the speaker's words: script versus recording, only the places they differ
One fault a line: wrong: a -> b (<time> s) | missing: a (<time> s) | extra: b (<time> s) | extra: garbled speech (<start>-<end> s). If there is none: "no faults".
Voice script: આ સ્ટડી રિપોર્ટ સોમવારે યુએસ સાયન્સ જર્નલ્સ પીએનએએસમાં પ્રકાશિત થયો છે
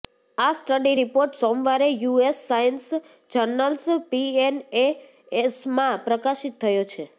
no faults